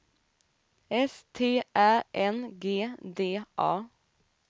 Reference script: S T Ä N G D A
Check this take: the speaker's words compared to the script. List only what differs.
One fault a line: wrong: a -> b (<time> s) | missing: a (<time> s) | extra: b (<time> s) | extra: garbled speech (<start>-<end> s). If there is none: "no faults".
no faults